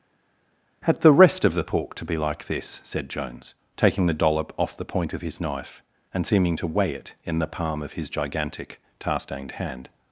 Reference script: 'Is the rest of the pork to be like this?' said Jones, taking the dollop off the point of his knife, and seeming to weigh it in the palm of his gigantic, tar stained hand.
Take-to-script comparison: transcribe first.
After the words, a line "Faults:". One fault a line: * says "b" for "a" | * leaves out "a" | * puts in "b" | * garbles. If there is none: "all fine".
'Had the rest of the pork to be like this?' said Jones, taking the dollop off the point of his knife, and seeming to weigh it in the palm of his gigantic, tar stained hand.
Faults:
* says "Had" for "Is"